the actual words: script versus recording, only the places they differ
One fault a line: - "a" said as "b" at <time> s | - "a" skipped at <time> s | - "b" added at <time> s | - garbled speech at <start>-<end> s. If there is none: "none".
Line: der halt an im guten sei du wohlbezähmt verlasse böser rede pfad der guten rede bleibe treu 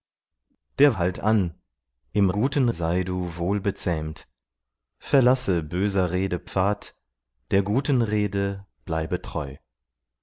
none